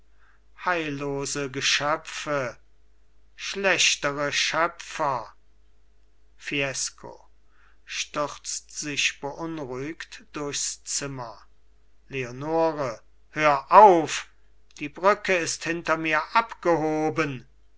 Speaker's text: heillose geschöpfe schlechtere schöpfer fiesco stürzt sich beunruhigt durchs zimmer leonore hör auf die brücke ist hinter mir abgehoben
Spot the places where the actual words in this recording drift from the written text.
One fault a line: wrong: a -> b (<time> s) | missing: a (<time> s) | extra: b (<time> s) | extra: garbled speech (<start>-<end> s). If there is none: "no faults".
no faults